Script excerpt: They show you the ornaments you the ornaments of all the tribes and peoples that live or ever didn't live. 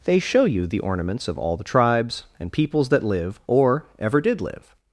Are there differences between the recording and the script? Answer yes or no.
yes